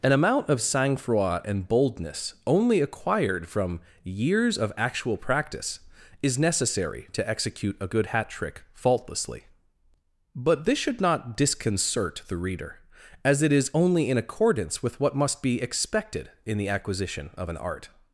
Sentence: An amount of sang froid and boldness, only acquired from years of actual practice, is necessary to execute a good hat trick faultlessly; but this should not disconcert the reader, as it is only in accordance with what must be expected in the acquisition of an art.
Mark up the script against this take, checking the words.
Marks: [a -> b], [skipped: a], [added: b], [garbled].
An amount of sang froid and boldness, only acquired from years of actual practice, is necessary to execute a good hat trick faultlessly; but this should not disconcert the reader, as it is only in accordance with what must be expected in the acquisition of an art.